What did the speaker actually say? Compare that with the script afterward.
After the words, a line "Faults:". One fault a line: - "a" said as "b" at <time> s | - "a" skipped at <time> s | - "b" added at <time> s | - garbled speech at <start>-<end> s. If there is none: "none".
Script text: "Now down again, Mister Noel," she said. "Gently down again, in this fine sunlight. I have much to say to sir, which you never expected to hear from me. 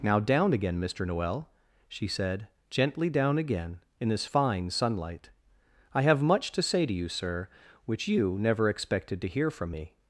"Now down again, Mister Noel," she said. "Gently down again, in this fine sunlight. I have much to say to you, sir, which you never expected to hear from me.
Faults:
- "you" added at 6.9 s